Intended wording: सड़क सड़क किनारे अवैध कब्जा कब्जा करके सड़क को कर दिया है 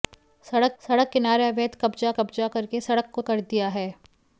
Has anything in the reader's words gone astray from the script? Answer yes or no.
no